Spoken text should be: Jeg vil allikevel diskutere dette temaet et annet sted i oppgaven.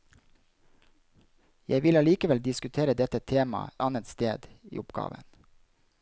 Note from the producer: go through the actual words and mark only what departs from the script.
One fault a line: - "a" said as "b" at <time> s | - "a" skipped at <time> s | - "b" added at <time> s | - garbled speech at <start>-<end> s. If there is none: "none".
- "et" skipped at 3.8 s